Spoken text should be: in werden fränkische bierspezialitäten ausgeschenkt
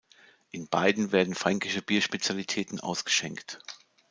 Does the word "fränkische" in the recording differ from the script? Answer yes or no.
no